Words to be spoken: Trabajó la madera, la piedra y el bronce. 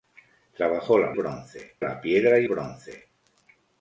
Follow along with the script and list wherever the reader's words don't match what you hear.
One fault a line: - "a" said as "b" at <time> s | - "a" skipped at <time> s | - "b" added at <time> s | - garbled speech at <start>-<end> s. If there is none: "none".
- "madera" said as "bronce" at 1.1 s
- "el" skipped at 2.5 s